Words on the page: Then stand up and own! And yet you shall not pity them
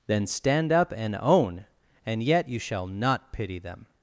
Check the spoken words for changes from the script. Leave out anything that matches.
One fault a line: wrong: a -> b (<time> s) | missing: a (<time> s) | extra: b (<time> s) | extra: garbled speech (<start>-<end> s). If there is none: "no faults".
no faults